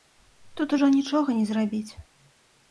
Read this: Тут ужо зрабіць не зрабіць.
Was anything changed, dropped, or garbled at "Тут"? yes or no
no